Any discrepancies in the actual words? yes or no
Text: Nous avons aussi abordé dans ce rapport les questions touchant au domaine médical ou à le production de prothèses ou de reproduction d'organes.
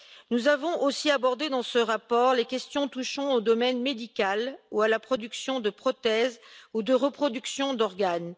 yes